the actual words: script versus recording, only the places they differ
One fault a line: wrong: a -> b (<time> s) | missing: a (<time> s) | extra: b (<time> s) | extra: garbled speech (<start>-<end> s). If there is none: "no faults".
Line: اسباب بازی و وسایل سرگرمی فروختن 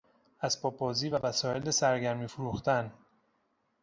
no faults